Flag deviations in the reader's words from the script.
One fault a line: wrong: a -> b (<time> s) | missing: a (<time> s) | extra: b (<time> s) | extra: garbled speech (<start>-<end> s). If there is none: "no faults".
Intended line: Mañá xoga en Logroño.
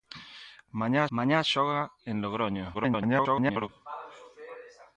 extra: mañá (1.2 s)
extra: garbled speech (2.7-3.7 s)